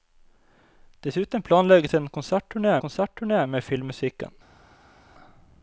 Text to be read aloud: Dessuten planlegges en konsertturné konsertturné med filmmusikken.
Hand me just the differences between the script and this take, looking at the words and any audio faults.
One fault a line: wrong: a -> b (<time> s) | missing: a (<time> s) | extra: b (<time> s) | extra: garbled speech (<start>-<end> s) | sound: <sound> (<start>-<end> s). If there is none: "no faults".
no faults